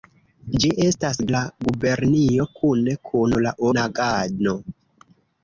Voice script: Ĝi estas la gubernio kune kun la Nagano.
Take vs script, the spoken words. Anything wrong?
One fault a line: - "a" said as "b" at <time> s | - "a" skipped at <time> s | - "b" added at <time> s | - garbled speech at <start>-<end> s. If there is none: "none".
none